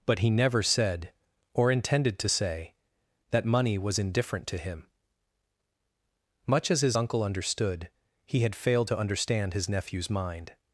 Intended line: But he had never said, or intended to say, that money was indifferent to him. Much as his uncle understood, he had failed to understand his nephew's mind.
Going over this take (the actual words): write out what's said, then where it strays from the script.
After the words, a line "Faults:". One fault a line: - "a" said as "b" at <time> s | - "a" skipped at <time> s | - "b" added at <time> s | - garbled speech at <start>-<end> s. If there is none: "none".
But he never said, or intended to say, that money was indifferent to him. Much as his uncle understood, he had failed to understand his nephew's mind.
Faults:
- "had" skipped at 0.3 s